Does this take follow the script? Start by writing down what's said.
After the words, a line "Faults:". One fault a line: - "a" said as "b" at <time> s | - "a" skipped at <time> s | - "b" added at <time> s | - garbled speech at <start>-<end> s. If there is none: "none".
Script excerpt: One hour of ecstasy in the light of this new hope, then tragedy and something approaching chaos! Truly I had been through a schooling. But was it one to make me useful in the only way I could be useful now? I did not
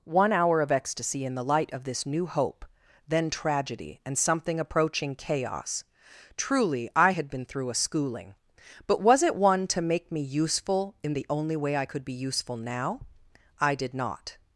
One hour of ecstasy in the light of this new hope, then tragedy and something approaching chaos! Truly I had been through a schooling. But was it one to make me useful in the only way I could be useful now? I did not
Faults:
none